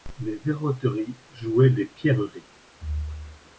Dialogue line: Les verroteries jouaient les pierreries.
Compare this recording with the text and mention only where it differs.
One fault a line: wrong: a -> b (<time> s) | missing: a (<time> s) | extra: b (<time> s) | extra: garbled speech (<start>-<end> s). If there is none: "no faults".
no faults